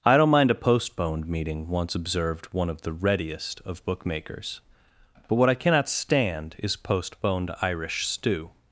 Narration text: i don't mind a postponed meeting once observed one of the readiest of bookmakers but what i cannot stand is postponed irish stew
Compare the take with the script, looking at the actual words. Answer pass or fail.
pass